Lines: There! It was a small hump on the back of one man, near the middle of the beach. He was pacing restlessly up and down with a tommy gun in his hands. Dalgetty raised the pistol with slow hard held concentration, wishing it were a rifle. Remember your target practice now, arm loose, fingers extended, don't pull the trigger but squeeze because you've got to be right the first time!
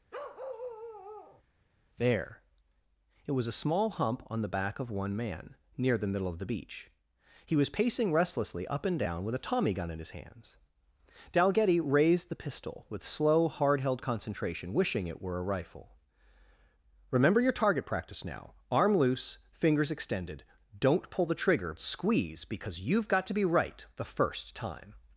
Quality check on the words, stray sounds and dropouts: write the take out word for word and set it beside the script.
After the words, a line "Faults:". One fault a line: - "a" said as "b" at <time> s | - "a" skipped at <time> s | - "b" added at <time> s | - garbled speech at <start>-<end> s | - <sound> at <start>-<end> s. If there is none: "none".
There! It was a small hump on the back of one man, near the middle of the beach. He was pacing restlessly up and down with a tommy gun in his hands. Dalgetty raised the pistol with slow hard held concentration, wishing it were a rifle. Remember your target practice now, arm loose, fingers extended, don't pull the trigger squeeze because you've got to be right the first time!
Faults:
- bark at 0.1-1.4 s
- "but" skipped at 21.8 s